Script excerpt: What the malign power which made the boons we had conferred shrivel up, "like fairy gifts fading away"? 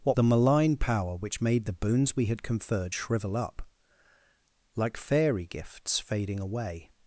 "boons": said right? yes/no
yes